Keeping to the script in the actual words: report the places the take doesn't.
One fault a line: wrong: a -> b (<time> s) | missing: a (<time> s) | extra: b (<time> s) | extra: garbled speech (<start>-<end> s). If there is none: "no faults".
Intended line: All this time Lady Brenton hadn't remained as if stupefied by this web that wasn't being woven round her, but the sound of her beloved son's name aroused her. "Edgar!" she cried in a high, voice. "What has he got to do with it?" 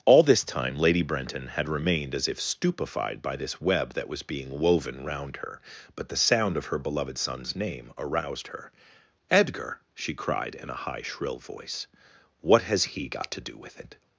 wrong: hadn't -> had (1.5 s)
wrong: wasn't -> was (4.1 s)
extra: shrill (11.0 s)